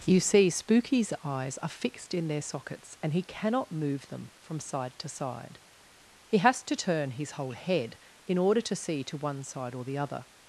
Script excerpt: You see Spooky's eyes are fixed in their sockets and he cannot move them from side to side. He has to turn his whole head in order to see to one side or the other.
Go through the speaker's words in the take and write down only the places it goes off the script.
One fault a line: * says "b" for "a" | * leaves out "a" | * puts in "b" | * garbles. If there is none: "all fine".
all fine